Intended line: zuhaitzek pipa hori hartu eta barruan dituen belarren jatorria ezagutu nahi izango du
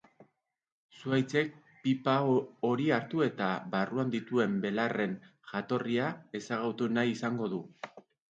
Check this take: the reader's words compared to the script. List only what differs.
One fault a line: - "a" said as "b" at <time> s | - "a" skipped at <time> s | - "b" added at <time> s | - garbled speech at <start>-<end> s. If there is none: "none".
none